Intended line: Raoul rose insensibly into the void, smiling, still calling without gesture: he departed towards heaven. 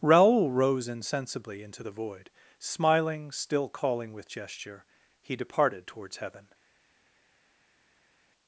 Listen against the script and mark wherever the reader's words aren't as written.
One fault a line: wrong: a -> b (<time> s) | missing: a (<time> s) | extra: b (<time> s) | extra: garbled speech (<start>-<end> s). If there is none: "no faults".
wrong: without -> with (4.1 s)